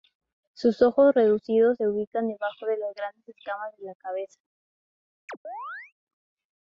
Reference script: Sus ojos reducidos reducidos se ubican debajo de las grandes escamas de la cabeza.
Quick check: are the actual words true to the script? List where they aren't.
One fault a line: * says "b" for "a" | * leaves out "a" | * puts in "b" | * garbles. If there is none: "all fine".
* leaves out "reducidos"